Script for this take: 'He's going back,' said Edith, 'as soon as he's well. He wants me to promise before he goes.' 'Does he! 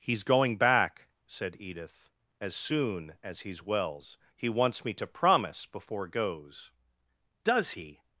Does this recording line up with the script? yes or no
no